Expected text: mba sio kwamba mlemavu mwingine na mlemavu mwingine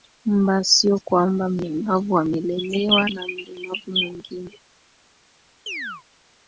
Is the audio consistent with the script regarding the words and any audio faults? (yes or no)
no